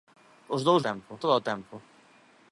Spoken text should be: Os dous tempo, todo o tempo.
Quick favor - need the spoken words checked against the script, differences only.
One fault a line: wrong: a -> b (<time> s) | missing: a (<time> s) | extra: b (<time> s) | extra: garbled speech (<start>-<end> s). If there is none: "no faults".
no faults